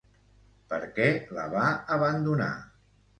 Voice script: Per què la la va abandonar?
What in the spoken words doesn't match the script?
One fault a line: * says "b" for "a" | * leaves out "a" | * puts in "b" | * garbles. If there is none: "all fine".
* leaves out "la"